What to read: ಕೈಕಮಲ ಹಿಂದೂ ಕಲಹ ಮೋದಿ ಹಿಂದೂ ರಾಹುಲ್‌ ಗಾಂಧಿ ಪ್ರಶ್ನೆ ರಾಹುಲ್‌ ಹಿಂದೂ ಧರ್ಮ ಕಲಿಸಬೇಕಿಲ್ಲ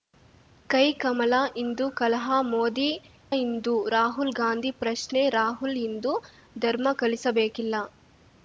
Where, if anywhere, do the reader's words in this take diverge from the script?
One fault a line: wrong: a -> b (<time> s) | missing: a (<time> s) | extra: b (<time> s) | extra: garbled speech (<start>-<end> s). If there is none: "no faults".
no faults